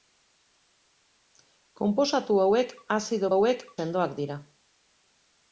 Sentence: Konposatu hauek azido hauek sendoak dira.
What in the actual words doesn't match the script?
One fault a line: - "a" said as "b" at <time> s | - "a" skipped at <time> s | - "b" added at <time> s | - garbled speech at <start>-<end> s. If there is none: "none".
none